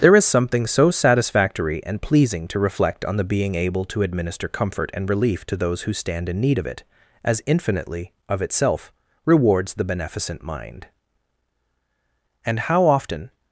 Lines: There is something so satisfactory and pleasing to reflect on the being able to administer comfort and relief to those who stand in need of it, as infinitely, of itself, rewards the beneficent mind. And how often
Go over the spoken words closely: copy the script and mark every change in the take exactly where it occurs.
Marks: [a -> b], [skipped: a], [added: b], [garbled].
There is something so satisfactory and pleasing to reflect on the being able to administer comfort and relief to those who stand in need of it, as infinitely, of itself, rewards the beneficent mind. And how often